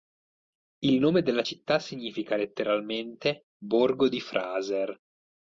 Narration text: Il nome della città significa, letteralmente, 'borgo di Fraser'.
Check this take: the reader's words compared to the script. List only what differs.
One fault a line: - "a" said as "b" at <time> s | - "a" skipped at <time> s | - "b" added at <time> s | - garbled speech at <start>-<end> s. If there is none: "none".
none